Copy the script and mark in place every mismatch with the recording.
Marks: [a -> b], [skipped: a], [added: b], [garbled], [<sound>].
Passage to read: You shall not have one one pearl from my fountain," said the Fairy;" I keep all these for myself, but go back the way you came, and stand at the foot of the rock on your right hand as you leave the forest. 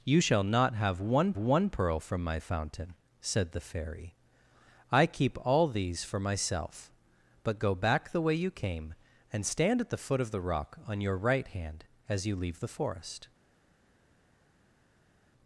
You shall not have one one pearl from my fountain," said the Fairy;" I keep all these for myself, but go back the way you came, and stand at the foot of the rock on your right hand as you leave the forest.